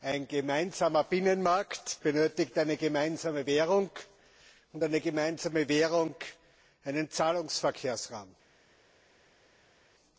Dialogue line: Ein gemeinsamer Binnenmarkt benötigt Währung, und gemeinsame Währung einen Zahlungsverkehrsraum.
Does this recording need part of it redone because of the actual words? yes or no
yes